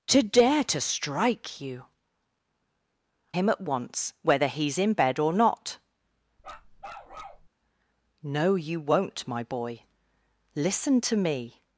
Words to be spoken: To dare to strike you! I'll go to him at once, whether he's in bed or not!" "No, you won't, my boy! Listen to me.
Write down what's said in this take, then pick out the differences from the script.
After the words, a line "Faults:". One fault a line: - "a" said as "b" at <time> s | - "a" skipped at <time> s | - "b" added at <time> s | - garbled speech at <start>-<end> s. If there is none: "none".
To dare to strike you! Him at once, whether he's in bed or not!" "No, you won't, my boy! Listen to me.
Faults:
- "I'll go to" skipped at 1.9 s